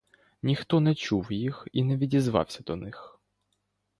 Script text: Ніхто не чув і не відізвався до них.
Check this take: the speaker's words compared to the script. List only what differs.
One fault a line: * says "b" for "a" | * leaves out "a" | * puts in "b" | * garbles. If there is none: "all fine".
* puts in "їх"